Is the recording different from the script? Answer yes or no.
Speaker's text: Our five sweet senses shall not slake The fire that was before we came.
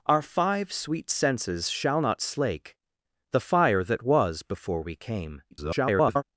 yes